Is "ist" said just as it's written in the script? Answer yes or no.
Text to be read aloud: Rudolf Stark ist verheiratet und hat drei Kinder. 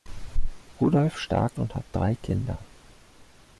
no